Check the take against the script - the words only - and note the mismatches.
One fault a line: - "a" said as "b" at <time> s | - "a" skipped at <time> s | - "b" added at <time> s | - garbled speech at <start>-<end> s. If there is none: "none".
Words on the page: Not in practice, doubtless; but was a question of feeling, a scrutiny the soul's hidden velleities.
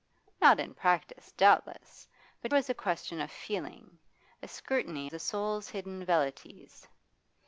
none